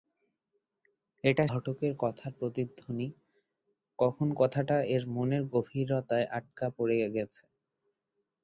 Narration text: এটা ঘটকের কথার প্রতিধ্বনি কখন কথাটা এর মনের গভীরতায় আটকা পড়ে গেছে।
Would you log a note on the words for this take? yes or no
no